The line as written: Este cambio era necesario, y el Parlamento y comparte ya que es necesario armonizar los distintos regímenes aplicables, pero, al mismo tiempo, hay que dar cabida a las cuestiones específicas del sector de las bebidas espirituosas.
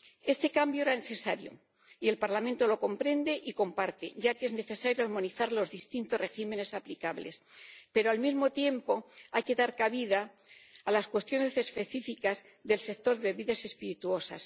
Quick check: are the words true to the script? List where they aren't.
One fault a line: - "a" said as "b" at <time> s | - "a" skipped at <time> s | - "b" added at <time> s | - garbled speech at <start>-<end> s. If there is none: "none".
- "lo comprende" added at 2.7 s